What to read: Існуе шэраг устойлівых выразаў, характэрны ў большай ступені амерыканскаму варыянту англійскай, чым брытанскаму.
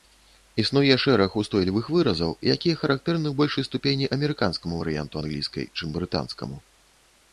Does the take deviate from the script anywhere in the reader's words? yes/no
yes